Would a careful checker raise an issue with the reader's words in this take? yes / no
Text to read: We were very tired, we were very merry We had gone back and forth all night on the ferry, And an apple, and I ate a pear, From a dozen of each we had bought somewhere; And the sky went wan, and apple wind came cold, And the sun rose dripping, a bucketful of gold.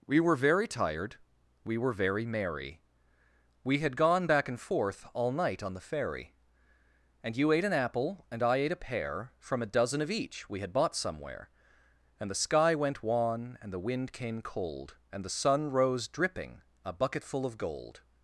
yes